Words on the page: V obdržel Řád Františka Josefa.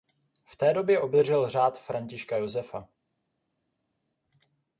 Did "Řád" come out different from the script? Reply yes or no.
no